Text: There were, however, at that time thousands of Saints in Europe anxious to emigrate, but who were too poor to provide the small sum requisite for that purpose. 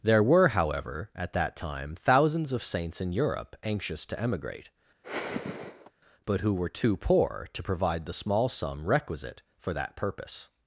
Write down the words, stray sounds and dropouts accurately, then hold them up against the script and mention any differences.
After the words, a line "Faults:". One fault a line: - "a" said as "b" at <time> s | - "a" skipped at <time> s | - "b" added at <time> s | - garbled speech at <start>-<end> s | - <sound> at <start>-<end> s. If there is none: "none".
There were, however, at that time thousands of Saints in Europe anxious to emigrate, but who were too poor to provide the small sum requisite for that purpose.
Faults:
- sigh at 5.0-5.9 s